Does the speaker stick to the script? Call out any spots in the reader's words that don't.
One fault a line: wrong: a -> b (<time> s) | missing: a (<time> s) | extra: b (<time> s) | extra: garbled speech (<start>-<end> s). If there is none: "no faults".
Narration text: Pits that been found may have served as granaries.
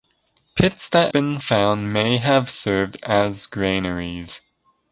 no faults